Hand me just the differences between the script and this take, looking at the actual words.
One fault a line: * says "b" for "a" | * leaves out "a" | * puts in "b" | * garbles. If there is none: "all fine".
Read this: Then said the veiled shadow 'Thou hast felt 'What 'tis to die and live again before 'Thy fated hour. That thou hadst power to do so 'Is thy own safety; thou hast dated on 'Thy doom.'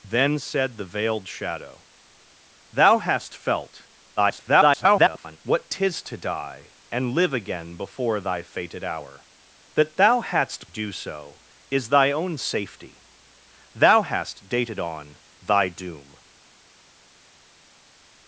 * garbles
* leaves out "power to"